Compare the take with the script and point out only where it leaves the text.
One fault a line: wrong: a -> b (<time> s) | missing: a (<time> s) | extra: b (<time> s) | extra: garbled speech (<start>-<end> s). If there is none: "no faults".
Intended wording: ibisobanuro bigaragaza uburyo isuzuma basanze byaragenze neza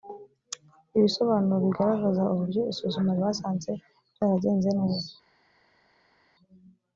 no faults